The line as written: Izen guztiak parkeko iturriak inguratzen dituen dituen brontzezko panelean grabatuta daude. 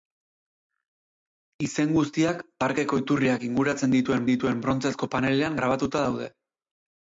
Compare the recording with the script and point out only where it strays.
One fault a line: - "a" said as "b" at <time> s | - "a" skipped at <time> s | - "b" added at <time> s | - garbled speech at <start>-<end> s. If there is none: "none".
none